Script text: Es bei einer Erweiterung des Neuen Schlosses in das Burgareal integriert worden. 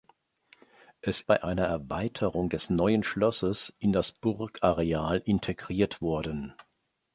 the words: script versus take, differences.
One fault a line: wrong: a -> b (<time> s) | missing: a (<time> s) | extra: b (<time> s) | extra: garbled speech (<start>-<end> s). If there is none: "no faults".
no faults